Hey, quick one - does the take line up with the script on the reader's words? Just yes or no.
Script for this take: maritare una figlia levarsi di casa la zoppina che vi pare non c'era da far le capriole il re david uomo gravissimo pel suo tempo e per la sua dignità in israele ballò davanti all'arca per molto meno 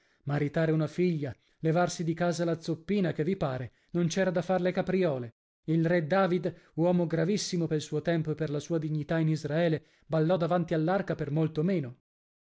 yes